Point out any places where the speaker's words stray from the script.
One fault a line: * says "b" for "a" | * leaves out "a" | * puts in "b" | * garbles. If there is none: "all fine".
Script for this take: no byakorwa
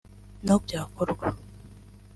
all fine